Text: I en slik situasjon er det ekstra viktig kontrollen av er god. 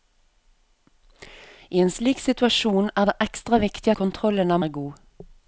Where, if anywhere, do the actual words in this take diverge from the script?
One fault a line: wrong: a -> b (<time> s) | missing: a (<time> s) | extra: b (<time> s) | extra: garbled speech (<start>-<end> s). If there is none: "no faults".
no faults